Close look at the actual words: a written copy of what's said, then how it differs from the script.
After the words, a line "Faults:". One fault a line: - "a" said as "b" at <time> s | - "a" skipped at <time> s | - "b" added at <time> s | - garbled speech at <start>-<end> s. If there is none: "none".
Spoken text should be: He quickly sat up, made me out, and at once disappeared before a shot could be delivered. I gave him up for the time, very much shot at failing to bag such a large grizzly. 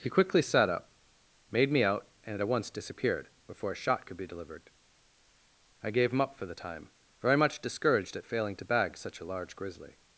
He quickly sat up, made me out, and at once disappeared before a shot could be delivered. I gave him up for the time, very much discouraged at failing to bag such a large grizzly.
Faults:
- "shot" said as "discouraged" at 7.6 s